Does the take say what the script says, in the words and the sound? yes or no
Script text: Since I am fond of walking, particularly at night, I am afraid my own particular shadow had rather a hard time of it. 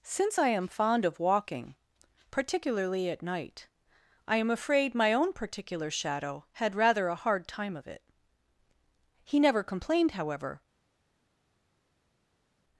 no